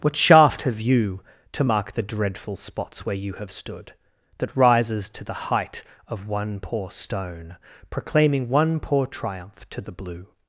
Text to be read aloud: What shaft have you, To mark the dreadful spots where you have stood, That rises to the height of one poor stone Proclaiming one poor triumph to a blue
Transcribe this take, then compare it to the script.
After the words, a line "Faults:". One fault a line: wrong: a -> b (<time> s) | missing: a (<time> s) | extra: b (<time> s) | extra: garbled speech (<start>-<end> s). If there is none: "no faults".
What shaft have you, To mark the dreadful spots where you have stood, That rises to the height of one poor stone Proclaiming one poor triumph to the blue
Faults:
wrong: a -> the (9.8 s)